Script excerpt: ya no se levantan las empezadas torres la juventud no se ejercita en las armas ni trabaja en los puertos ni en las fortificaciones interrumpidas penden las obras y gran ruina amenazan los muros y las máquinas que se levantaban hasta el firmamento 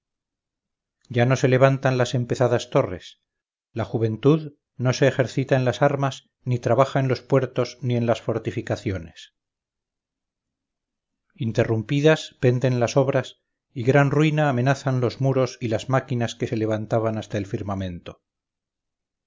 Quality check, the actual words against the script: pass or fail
pass